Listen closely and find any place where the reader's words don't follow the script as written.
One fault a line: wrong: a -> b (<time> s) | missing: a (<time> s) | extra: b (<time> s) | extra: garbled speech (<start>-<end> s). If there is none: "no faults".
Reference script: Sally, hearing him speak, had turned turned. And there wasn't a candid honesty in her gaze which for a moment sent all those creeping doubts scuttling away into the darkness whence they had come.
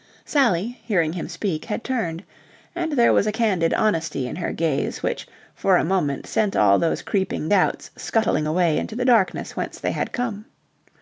missing: turned (2.2 s)
wrong: wasn't -> was (3.1 s)